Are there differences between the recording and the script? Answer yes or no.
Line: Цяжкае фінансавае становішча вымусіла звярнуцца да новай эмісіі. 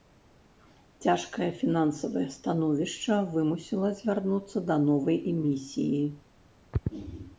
no